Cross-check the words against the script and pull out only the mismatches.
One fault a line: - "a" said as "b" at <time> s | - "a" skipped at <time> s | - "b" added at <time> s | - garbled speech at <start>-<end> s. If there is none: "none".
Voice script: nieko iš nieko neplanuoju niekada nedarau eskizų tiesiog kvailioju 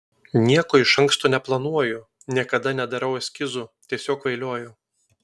- "nieko" said as "anksto" at 1.0 s